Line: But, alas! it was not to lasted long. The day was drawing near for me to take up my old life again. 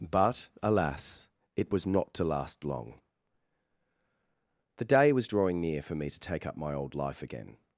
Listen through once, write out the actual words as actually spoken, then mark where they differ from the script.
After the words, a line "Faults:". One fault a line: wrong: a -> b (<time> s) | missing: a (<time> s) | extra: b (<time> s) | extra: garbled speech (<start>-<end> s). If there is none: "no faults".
But, alas! it was not to last long. The day was drawing near for me to take up my old life again.
Faults:
wrong: lasted -> last (2.2 s)